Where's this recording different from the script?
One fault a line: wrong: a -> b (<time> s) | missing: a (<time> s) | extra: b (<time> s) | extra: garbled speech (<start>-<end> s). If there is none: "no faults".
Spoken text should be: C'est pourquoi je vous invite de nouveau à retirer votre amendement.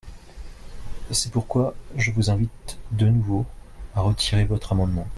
no faults